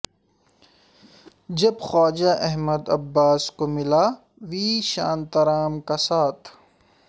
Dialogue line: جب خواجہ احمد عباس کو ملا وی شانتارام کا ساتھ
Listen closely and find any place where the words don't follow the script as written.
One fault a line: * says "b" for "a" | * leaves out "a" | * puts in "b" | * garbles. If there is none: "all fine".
all fine